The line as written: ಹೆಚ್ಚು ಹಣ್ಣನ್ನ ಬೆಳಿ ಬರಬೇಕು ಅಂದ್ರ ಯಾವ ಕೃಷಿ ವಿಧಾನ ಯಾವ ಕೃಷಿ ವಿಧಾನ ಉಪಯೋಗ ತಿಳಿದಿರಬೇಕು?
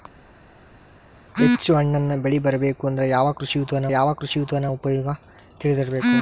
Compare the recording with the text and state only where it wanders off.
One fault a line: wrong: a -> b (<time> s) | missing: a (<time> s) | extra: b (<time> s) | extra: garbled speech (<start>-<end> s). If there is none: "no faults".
no faults